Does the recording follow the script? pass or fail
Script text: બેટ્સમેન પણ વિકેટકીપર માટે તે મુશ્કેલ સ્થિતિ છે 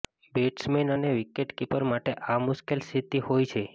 fail